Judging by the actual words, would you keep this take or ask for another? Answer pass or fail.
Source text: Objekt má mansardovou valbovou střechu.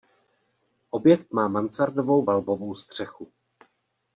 pass